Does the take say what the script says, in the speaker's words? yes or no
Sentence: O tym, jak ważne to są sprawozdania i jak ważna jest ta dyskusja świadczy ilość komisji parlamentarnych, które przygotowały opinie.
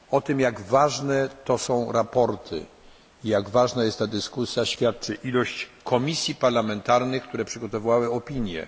yes